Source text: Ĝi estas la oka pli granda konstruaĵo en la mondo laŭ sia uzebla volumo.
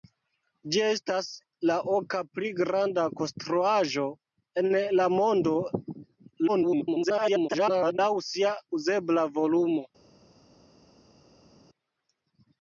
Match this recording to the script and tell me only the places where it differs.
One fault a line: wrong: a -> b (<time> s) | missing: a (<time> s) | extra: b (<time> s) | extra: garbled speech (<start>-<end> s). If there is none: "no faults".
extra: garbled speech (6.5-8.0 s)